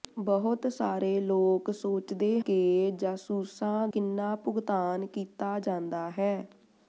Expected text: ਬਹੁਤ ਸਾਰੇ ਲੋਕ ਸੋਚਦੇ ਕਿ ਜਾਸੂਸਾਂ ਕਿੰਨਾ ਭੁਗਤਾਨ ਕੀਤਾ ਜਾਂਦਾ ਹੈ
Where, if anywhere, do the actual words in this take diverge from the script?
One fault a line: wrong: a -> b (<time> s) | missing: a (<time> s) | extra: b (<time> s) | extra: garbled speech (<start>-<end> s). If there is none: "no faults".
no faults